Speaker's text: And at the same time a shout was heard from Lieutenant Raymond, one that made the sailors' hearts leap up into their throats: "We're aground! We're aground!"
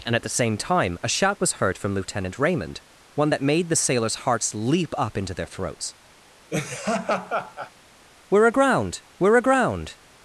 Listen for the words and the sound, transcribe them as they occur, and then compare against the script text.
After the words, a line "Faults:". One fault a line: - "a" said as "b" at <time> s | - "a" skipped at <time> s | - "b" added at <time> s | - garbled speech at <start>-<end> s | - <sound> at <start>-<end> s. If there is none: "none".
And at the same time a shout was heard from Lieutenant Raymond, one that made the sailors' hearts leap up into their throats: "We're aground! We're aground!"
Faults:
- laugh at 6.5-7.7 s